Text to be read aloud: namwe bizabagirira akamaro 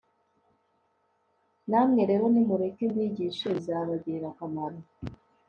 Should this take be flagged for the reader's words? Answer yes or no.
yes